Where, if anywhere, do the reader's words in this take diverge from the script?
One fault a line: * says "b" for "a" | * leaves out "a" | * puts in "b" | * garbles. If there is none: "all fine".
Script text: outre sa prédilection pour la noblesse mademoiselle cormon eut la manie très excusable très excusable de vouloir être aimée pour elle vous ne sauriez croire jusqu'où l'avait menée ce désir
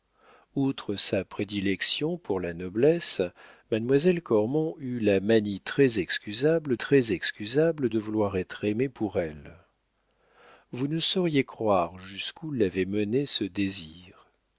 all fine